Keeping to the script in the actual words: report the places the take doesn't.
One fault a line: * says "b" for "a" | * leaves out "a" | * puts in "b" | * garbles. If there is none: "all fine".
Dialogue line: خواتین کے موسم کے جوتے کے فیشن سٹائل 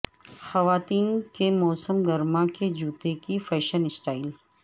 * puts in "گرما"
* says "کی" for "کے"